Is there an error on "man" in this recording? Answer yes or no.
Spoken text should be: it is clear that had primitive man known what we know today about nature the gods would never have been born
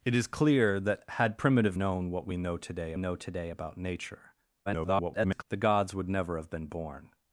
yes